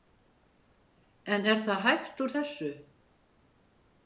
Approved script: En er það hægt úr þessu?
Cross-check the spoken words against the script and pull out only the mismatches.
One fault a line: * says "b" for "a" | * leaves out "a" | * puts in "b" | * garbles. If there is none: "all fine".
all fine